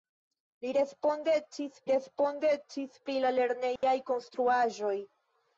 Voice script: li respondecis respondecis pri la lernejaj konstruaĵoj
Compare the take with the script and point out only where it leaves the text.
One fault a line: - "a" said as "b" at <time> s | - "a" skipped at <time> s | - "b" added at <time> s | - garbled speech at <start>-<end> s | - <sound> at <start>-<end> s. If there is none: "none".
- dropout at 3.8-3.8 s